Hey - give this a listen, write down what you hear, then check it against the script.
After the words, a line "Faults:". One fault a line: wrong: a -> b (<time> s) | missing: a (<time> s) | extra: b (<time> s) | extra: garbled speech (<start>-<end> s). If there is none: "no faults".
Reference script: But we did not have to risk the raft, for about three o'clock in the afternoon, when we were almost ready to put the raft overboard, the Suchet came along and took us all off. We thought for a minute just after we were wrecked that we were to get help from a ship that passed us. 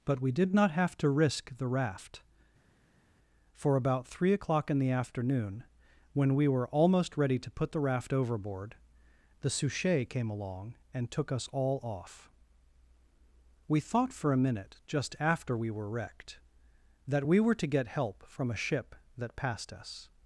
But we did not have to risk the raft, for about three o'clock in the afternoon, when we were almost ready to put the raft overboard, the Suchet came along and took us all off. We thought for a minute just after we were wrecked that we were to get help from a ship that passed us.
Faults:
no faults